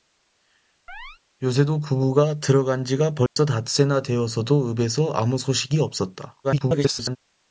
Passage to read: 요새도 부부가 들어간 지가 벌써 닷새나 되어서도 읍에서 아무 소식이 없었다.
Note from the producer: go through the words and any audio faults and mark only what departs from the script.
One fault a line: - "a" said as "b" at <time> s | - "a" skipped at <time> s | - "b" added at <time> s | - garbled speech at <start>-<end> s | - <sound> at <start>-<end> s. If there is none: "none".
- chirp at 0.9-1.2 s
- dropout at 3.3-3.4 s
- garbled speech at 6.4-7.2 s